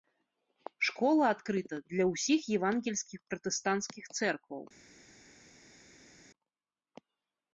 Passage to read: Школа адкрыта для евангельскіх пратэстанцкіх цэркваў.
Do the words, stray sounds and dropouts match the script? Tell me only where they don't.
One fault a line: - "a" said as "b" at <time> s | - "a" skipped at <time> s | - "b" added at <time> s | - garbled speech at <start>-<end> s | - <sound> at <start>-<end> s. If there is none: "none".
- "ўсіх" added at 2.1 s